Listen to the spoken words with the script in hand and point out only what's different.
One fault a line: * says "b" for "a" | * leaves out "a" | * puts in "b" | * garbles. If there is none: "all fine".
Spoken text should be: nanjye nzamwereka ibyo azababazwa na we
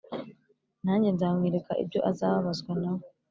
all fine